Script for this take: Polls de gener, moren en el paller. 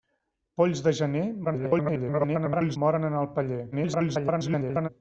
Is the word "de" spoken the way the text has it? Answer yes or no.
yes